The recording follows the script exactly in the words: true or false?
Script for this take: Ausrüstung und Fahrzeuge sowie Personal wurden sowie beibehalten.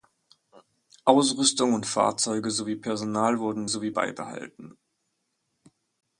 true